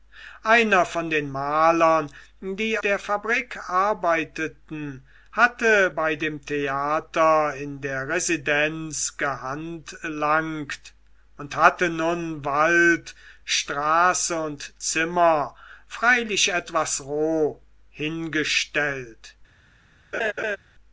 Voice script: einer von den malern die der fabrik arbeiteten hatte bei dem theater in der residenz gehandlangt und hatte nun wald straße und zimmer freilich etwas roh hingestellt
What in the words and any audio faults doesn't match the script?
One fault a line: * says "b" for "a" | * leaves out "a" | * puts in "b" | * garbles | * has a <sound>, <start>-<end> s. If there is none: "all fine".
* has a laugh, 20.1-20.6 s